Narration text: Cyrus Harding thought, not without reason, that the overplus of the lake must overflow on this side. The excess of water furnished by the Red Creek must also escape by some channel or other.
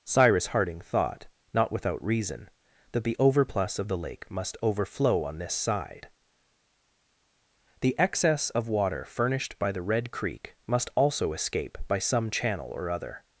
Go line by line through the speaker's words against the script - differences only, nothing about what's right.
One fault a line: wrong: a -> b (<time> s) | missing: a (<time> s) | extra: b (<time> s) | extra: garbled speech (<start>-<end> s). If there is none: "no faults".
no faults